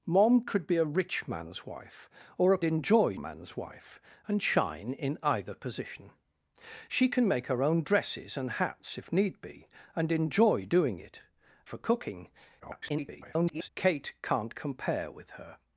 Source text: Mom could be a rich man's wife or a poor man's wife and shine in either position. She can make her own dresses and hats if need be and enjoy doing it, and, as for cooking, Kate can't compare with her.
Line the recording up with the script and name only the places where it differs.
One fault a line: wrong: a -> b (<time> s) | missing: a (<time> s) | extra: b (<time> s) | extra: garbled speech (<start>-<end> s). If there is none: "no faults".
wrong: poor -> enjoy (2.6 s)
missing: and as (11.2 s)
extra: garbled speech (12.6-13.7 s)